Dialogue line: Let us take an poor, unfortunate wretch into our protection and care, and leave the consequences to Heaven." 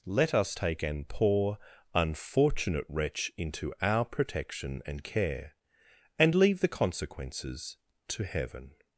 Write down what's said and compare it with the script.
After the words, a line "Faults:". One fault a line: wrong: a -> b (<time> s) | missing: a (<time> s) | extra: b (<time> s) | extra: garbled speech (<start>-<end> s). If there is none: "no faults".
Let us take an poor, unfortunate wretch into our protection and care, and leave the consequences to Heaven."
Faults:
no faults